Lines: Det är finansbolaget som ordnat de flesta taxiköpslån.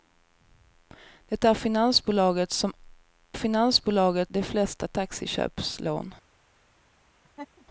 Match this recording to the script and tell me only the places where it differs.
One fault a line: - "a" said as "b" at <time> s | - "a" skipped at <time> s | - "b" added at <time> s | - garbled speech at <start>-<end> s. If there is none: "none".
- "ordnat" said as "finansbolaget" at 3.3 s